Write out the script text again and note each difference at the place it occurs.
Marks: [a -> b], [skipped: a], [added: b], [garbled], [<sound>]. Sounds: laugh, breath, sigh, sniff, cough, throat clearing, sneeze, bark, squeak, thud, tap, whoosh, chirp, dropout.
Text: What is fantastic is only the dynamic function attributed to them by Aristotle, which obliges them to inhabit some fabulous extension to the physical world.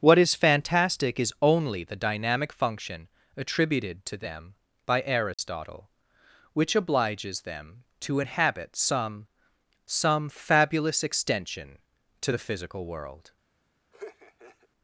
What is fantastic is only the dynamic function attributed to them by Aristotle, [dropout] which obliges them to inhabit some [added: some] fabulous extension to the physical world. [laugh]